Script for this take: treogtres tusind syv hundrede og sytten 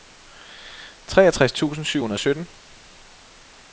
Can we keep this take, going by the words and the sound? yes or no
yes